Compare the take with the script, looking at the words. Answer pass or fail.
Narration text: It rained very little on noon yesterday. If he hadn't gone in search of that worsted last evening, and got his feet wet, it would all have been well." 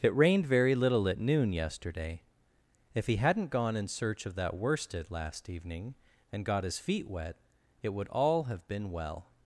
fail